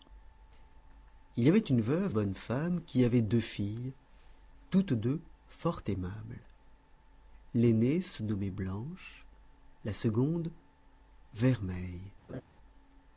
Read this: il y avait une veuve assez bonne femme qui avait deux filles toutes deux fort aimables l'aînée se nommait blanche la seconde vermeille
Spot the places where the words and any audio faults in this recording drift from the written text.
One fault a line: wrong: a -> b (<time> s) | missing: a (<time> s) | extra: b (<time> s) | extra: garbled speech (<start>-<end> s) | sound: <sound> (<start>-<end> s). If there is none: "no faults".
missing: assez (2.1 s)
sound: laugh (12.3-12.4 s)